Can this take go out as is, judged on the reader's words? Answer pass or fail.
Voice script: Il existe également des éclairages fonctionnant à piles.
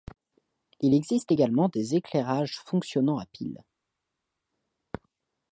pass